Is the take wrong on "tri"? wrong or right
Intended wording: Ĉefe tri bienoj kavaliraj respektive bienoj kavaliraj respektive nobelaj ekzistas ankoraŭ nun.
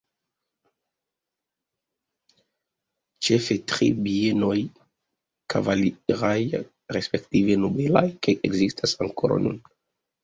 right